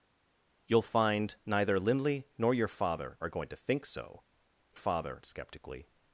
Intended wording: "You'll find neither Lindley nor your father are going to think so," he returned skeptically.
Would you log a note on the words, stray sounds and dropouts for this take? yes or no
yes